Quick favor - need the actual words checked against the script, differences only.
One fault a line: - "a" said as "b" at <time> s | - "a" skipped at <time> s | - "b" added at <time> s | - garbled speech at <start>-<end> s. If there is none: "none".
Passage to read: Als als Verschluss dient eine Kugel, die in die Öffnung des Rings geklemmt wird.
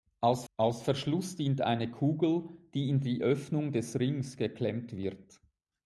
none